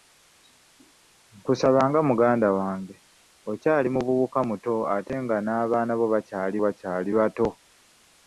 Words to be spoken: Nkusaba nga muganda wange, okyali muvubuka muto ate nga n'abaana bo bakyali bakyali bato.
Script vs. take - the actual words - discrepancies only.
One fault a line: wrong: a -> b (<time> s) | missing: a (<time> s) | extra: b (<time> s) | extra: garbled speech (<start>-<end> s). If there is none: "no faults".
no faults